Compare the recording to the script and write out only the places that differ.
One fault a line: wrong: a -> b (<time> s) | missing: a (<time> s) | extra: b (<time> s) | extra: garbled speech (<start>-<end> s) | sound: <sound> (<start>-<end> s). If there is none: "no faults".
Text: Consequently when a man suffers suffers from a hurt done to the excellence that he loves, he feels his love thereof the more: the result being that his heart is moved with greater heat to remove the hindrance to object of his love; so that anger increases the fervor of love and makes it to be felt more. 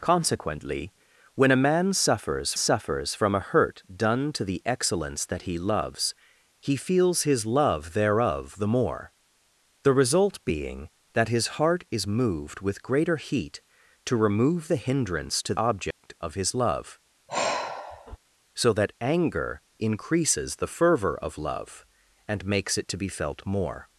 sound: dropout (15.9-16.0 s)
sound: sigh (17.3-18.2 s)